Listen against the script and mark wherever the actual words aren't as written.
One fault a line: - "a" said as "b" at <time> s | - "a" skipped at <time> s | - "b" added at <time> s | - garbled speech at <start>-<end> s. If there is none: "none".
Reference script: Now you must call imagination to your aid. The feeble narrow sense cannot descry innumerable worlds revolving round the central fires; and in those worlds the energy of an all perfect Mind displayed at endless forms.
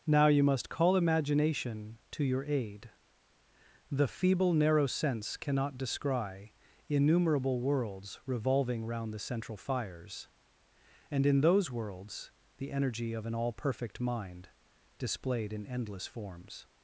- "at" said as "in" at 15.5 s